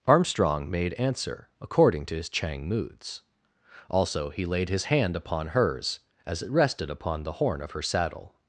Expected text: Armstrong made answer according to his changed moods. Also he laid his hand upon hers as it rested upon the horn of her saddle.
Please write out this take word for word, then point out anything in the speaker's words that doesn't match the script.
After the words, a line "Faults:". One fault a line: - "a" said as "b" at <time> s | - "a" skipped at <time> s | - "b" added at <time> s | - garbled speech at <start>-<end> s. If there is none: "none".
Armstrong made answer according to his chang moods. Also he laid his hand upon hers as it rested upon the horn of her saddle.
Faults:
- "changed" said as "chang" at 2.3 s